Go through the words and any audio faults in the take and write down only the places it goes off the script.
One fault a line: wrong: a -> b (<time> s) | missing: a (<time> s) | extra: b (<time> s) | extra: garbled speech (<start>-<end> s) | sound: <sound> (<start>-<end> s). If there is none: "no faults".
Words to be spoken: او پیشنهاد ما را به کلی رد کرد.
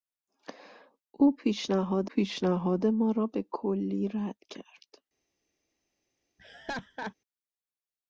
extra: پیشنهاد (2.1 s)
sound: laugh (6.4-7.1 s)